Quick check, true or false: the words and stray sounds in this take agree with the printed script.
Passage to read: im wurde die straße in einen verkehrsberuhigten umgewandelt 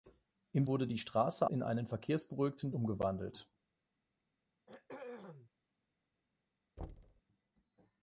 false